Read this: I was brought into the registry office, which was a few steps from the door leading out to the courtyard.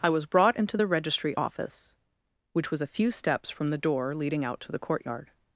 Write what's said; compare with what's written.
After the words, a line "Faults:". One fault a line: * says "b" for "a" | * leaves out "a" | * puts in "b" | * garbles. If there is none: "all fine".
I was brought into the registry office, which was a few steps from the door leading out to the courtyard.
Faults:
all fine